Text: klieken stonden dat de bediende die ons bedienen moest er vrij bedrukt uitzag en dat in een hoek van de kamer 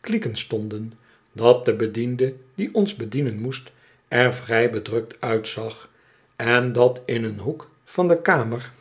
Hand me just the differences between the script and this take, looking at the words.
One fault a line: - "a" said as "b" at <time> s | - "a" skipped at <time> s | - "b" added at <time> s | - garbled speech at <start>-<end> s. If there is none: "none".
none